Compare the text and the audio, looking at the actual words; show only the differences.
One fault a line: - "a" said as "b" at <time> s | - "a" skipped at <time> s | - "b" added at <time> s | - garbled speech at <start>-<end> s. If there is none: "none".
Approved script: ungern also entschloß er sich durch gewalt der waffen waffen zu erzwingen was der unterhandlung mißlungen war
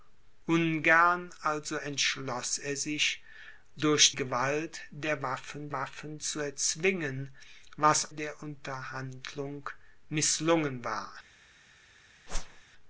none